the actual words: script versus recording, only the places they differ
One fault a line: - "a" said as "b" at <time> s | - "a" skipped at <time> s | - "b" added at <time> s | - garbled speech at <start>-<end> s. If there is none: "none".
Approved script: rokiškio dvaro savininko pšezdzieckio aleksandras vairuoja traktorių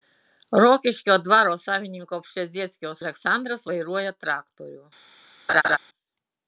none